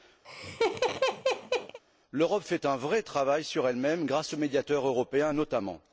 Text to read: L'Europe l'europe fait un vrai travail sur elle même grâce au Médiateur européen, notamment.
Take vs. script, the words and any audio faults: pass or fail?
fail